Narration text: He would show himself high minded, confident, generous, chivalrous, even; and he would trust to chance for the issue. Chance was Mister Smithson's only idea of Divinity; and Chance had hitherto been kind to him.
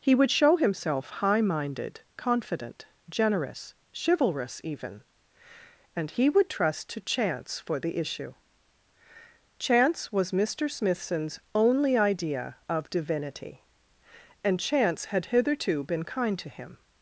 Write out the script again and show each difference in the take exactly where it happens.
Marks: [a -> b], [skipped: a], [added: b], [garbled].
He would show himself high minded, confident, generous, chivalrous, even; and he would trust to chance for the issue. Chance was Mister Smithson's only idea of Divinity; and Chance had hitherto been kind to him.